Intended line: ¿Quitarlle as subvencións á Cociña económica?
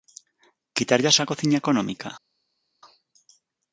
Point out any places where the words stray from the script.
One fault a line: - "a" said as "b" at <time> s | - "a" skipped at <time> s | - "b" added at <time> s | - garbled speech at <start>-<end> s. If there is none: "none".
- "subvencións" skipped at 1.2 s